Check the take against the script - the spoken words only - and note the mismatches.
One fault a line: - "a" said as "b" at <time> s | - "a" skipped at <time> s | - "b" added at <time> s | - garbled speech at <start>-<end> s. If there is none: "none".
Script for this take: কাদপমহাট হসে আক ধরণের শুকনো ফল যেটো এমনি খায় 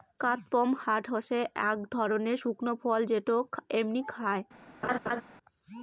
none